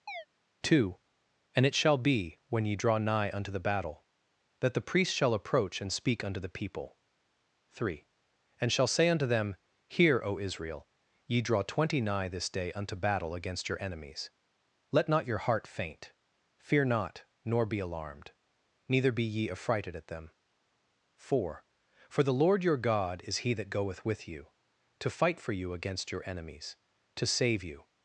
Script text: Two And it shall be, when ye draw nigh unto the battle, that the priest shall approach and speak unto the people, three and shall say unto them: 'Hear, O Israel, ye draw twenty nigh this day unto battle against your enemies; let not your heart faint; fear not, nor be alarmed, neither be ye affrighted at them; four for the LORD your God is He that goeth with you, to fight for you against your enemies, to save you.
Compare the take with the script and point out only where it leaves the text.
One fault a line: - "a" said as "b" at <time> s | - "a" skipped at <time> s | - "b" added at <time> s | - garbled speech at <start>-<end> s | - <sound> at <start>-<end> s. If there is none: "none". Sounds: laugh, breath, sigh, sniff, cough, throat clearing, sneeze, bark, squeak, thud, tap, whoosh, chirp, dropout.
- chirp at 0.1-0.3 s